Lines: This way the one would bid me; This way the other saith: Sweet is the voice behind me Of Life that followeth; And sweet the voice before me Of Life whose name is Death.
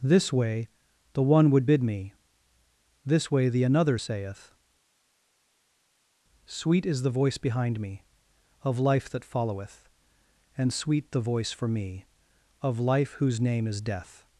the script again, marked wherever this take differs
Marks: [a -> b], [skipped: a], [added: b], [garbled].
This way the one would bid me; This way the [other -> another] saith: Sweet is the voice behind me Of Life that followeth; And sweet the voice [before -> for] me Of Life whose name is Death.